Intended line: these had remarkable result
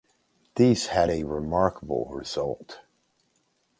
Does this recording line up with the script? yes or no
no